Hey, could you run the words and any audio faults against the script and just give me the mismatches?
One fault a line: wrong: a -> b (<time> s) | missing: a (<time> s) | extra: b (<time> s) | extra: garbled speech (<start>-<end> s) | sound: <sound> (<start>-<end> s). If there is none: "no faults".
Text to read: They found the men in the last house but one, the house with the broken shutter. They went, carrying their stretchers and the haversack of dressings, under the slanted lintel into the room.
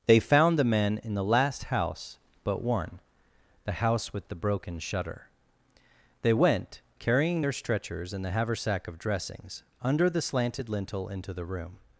no faults